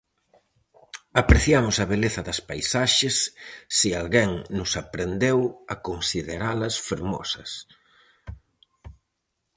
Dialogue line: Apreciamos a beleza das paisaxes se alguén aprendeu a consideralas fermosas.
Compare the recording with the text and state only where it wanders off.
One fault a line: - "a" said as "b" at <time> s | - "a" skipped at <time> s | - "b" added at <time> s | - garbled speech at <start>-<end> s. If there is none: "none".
- "nos" added at 4.6 s